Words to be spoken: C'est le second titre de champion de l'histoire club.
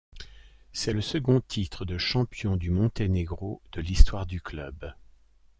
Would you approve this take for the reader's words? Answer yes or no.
no